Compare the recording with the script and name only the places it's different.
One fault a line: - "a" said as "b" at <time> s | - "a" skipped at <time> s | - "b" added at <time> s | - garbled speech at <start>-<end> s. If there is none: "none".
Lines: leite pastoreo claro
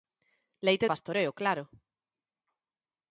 none